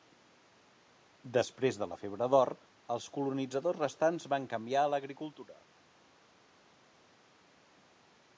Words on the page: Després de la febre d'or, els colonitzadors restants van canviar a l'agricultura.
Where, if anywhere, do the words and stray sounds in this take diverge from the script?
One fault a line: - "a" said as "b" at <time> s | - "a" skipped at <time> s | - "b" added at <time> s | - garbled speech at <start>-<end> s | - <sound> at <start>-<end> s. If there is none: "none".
none